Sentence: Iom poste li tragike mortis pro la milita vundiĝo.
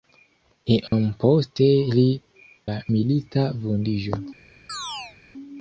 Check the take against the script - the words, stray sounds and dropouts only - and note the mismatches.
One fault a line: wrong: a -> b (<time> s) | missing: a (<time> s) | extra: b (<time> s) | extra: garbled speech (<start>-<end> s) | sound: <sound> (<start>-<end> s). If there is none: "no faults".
sound: dropout (0.9-0.9 s)
missing: tragike mortis pro (2.1 s)
sound: chirp (4.7-5.2 s)